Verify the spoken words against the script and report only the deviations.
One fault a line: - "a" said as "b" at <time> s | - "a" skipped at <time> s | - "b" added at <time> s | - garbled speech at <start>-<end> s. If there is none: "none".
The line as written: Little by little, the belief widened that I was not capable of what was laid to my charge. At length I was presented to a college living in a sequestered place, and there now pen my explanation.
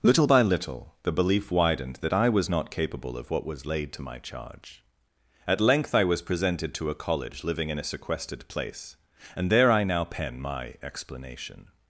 - "I" added at 9.7 s